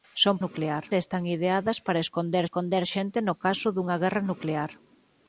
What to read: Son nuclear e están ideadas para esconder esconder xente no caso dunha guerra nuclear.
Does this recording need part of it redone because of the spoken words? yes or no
no